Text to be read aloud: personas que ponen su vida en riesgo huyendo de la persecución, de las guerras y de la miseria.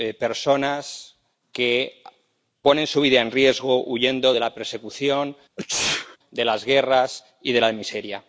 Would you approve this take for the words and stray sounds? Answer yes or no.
no